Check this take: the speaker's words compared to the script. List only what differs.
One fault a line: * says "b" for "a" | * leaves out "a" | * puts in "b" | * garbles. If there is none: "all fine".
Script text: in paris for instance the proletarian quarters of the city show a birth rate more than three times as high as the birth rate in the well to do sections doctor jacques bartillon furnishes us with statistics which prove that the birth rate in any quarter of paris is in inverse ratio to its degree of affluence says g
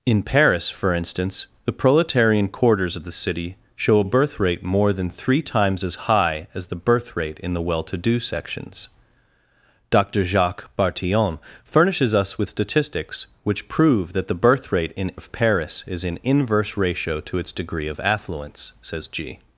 * leaves out "any quarter"